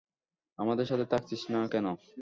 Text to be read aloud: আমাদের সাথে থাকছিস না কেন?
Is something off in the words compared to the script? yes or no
no